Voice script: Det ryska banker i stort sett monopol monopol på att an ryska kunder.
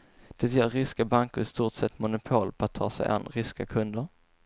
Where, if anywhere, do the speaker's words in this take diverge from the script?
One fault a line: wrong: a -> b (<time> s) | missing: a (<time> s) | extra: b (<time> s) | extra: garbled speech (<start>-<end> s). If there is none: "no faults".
extra: ger (0.5 s)
missing: monopol (2.5 s)
extra: ta sig (2.7 s)